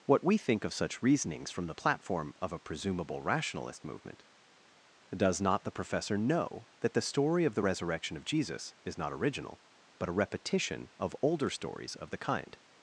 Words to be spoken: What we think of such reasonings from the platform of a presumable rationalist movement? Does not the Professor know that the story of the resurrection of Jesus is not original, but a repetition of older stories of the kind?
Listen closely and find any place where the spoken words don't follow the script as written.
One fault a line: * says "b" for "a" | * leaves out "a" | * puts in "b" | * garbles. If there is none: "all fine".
all fine